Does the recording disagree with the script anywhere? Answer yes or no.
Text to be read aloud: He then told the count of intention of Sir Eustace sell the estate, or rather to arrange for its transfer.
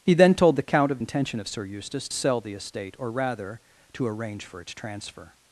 no